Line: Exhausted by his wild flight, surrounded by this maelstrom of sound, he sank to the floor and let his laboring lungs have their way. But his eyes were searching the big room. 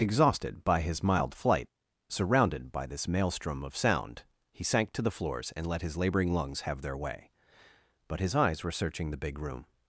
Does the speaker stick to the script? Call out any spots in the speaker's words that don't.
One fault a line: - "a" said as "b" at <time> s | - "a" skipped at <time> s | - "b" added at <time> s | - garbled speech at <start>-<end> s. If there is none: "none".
- "wild" said as "mild" at 1.0 s
- "floor" said as "floors" at 5.1 s